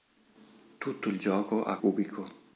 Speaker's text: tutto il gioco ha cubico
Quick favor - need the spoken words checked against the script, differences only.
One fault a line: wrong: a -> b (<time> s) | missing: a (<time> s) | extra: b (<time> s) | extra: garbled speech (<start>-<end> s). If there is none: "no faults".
no faults